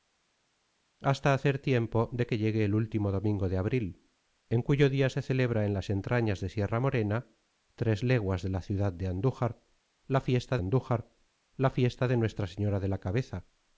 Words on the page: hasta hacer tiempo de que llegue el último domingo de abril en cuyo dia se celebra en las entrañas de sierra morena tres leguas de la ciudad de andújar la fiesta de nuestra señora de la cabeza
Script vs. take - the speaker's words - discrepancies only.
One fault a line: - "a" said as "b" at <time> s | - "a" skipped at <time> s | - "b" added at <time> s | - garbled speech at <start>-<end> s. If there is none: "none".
- "andújar la fiesta" added at 10.6 s